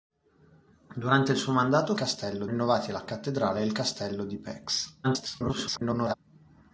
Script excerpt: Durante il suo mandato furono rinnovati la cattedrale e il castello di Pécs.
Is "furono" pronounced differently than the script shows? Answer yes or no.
yes